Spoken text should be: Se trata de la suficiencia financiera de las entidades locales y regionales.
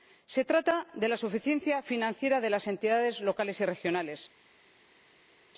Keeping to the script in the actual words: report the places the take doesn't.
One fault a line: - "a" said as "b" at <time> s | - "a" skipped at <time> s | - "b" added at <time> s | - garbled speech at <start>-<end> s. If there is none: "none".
none